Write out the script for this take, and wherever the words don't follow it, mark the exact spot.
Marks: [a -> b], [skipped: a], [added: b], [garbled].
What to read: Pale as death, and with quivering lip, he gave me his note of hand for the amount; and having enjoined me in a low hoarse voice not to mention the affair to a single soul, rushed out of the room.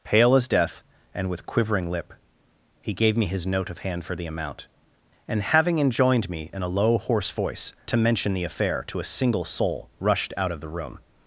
Pale as death, and with quivering lip, he gave me his note of hand for the amount; and having enjoined me in a low hoarse voice [skipped: not] to mention the affair to a single soul, rushed out of the room.